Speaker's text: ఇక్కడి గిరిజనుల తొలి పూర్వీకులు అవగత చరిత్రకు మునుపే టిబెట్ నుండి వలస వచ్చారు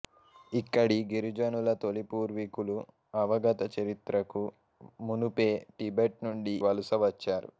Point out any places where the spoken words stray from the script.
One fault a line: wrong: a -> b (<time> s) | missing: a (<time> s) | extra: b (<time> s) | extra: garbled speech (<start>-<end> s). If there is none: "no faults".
no faults